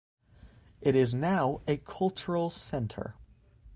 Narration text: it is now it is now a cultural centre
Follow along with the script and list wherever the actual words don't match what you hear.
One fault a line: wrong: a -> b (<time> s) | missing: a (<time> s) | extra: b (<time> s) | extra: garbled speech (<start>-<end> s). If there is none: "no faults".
missing: it is now (1.6 s)